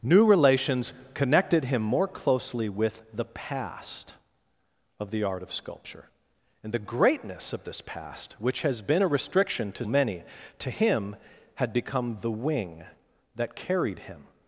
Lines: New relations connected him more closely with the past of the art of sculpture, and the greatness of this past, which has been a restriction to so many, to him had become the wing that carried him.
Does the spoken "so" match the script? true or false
false